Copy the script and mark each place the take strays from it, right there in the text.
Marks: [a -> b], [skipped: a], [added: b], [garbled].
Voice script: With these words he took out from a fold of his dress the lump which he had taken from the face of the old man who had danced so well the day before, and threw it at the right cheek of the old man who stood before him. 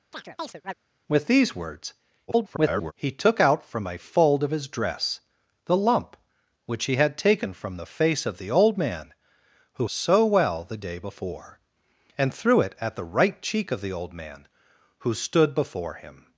With these words [garbled] he took out from a fold of his dress the lump which he had taken from the face of the old man who [skipped: had danced] so well the day before, and threw it at the right cheek of the old man who stood before him.